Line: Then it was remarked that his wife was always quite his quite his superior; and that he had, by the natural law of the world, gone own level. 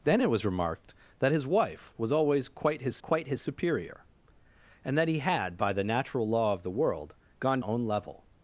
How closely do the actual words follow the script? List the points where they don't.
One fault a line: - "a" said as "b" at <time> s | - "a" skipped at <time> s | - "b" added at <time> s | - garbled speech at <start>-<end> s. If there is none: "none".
none